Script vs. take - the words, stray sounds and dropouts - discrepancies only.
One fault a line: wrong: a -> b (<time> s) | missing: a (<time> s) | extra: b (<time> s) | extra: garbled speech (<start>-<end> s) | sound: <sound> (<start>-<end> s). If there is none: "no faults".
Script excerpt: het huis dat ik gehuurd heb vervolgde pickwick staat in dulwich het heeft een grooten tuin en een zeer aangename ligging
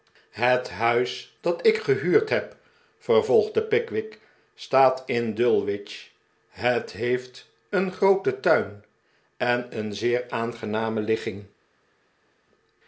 no faults